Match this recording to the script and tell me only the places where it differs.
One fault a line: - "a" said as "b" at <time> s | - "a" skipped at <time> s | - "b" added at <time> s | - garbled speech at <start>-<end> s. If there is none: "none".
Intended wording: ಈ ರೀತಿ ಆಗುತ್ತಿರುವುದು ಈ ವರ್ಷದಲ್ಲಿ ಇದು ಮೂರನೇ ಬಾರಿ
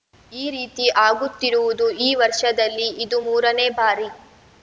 none